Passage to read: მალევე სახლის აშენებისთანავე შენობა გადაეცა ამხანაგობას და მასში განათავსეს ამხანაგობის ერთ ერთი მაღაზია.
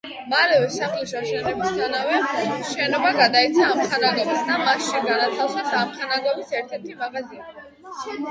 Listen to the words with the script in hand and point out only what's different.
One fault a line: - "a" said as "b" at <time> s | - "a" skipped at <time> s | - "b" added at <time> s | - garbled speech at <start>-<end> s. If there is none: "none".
none